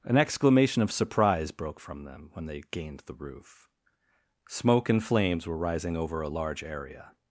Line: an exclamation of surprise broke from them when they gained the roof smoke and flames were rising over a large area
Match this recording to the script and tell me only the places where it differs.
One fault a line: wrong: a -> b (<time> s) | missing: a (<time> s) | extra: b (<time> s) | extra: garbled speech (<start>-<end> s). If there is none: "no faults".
no faults